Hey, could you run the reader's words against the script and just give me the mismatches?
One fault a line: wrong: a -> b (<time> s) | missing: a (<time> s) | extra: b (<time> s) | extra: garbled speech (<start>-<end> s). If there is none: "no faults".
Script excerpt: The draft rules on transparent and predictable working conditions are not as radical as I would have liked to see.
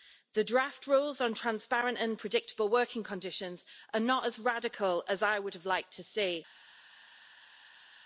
no faults